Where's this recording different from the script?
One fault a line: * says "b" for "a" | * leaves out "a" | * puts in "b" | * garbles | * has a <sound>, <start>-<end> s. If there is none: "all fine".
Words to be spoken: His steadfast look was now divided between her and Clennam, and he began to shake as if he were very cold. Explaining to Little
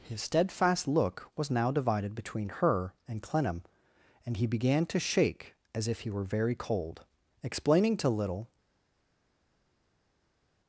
all fine